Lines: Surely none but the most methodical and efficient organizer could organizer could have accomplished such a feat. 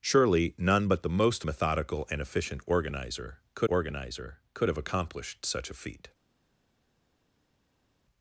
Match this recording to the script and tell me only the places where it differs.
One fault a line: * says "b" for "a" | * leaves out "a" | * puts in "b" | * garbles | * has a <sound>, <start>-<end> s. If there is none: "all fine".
all fine